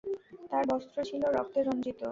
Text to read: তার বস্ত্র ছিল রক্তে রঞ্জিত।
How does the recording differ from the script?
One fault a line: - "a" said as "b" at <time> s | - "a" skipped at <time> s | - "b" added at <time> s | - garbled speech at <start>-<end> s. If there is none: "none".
none